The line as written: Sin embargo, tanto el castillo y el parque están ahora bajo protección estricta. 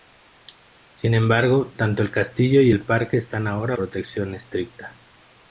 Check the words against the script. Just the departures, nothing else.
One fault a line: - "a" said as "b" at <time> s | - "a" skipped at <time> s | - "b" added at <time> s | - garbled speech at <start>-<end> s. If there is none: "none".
- "bajo" skipped at 3.7 s